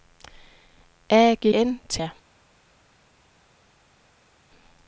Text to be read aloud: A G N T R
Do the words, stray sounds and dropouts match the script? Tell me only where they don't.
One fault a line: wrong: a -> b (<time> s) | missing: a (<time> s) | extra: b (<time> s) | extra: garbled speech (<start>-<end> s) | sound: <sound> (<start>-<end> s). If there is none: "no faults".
no faults